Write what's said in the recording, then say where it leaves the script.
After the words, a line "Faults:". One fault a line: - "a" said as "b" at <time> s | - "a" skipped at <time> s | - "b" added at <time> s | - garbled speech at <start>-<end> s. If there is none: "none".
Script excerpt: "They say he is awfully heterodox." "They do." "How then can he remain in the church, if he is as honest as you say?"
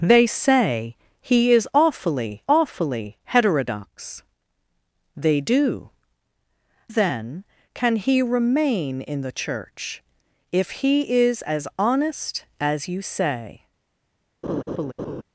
"They say he is awfully awfully heterodox." "They do." "Then can he remain in the church, if he is as honest as you say?"
Faults:
- "awfully" added at 2.5 s
- "How" skipped at 5.9 s